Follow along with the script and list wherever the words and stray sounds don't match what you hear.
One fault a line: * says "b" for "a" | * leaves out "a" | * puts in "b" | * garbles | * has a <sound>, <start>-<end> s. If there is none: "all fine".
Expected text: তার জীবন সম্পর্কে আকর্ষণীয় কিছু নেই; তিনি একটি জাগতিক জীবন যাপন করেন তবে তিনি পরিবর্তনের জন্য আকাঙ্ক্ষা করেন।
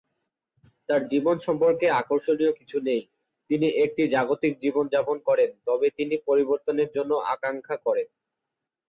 all fine